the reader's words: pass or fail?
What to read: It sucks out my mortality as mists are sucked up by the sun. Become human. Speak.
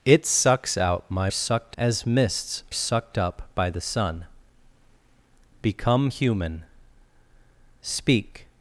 fail